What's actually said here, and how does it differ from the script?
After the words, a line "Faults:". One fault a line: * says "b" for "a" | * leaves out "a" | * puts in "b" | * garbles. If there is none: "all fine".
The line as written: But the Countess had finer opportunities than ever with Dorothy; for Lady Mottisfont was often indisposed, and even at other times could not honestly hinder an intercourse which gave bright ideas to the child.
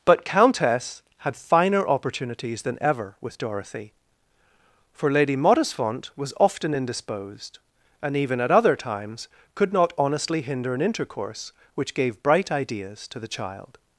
But Countess had finer opportunities than ever with Dorothy; for Lady Mottisfont was often indisposed, and even at other times could not honestly hinder an intercourse which gave bright ideas to the child.
Faults:
* leaves out "the"